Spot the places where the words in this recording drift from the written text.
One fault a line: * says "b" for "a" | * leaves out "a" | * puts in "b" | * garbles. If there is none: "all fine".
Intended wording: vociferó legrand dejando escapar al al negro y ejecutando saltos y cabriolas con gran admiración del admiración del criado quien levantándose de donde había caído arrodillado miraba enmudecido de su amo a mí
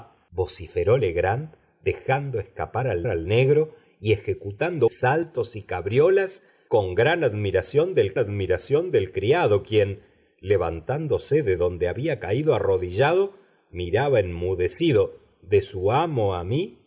all fine